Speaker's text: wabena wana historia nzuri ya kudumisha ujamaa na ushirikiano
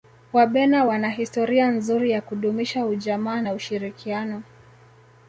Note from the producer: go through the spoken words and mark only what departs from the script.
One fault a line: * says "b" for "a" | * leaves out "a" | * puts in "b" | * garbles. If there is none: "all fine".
all fine